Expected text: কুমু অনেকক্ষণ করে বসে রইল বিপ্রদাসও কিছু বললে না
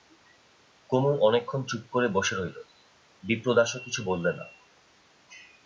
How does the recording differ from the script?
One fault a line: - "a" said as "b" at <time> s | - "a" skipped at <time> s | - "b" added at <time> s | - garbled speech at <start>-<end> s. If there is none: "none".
- "চুপ" added at 1.6 s